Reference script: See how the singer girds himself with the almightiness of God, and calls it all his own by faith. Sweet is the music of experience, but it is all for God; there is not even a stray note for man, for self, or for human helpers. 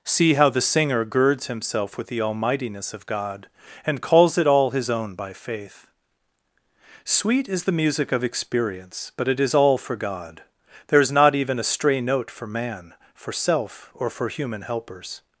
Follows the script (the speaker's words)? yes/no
yes